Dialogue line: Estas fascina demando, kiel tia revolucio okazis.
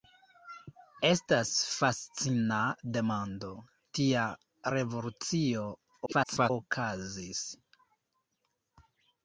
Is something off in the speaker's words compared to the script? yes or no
yes